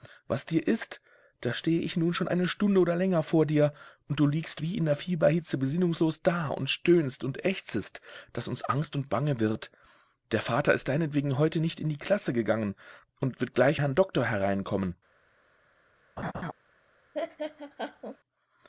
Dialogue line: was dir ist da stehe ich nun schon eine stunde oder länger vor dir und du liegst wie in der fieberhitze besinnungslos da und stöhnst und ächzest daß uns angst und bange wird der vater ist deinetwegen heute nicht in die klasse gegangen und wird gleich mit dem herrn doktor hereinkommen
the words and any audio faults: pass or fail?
fail